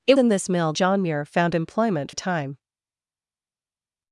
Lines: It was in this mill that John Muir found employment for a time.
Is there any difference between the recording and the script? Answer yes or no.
yes